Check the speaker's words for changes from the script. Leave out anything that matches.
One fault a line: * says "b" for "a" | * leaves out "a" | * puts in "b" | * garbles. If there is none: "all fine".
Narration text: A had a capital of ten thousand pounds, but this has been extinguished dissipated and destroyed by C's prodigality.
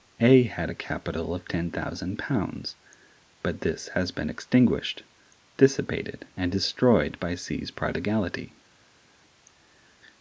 all fine